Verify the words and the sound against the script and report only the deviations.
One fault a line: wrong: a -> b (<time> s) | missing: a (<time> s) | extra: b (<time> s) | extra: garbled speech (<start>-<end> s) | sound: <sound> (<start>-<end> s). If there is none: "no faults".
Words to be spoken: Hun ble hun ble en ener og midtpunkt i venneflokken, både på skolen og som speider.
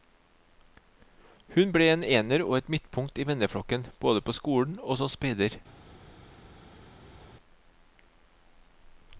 missing: hun ble (1.9 s)
extra: et (2.6 s)